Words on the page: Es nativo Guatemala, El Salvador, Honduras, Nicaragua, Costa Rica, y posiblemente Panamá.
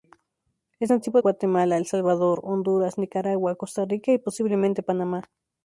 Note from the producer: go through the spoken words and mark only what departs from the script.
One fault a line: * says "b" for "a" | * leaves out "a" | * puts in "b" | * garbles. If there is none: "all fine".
all fine